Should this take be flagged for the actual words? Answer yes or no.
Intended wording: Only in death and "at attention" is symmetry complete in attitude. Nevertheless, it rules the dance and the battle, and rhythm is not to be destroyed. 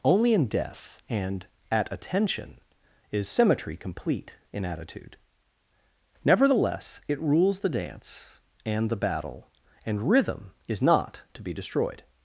no